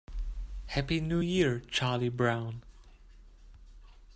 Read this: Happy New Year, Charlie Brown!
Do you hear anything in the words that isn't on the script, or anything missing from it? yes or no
no